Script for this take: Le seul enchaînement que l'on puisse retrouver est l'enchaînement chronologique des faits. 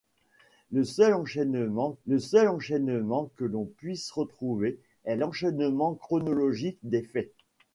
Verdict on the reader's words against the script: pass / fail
fail